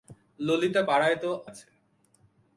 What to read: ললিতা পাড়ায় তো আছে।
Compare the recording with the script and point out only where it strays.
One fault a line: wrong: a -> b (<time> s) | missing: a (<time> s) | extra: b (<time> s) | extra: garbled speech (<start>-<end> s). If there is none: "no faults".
no faults